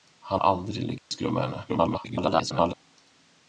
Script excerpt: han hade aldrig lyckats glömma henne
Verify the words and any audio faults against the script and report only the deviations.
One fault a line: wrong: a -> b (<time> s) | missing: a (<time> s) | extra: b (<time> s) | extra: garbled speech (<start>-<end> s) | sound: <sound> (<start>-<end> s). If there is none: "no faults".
missing: hade (0.4 s)
sound: dropout (1.0-1.1 s)
extra: garbled speech (1.7-2.7 s)